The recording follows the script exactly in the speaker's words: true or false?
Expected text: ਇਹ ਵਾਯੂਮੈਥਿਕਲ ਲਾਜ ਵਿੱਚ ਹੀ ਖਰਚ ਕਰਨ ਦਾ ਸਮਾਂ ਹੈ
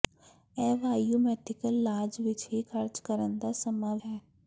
true